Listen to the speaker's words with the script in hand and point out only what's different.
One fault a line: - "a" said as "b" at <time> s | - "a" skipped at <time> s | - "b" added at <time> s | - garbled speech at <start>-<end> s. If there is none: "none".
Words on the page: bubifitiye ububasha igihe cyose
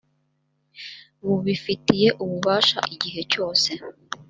none